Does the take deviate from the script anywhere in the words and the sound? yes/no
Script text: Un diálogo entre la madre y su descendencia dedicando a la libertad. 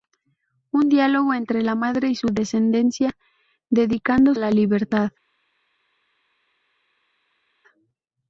no